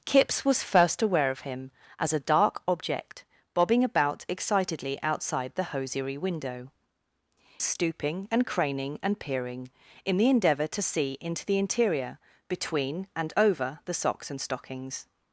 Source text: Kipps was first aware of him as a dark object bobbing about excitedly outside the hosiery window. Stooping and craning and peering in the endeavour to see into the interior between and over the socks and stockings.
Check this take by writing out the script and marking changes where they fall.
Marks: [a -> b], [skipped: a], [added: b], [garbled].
Kipps was first aware of him as a dark object bobbing about excitedly outside the hosiery window. Stooping and craning and peering in the endeavour to see into the interior between and over the socks and stockings.